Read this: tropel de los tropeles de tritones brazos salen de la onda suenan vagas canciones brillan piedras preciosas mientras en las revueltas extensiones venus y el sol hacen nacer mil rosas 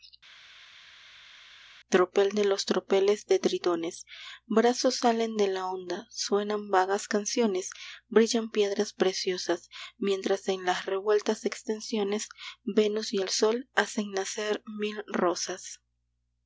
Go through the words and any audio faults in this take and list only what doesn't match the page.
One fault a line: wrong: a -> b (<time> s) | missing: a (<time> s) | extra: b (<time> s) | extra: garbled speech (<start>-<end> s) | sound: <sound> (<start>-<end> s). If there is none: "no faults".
no faults